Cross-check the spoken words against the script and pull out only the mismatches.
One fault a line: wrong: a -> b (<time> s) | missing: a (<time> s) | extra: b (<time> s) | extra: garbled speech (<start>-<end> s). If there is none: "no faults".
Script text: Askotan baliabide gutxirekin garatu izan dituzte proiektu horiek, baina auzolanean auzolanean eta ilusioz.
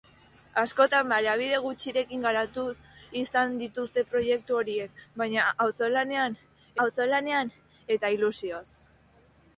no faults